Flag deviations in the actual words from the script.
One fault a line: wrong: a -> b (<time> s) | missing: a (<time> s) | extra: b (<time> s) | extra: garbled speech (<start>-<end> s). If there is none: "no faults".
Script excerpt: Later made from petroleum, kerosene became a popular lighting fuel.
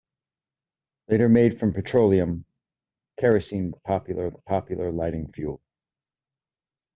wrong: became -> popular (3.7 s)